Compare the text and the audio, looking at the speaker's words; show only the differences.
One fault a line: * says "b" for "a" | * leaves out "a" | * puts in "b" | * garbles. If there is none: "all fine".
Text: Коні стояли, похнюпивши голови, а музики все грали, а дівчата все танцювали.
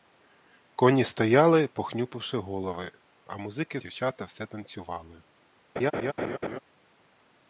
* leaves out "все грали а"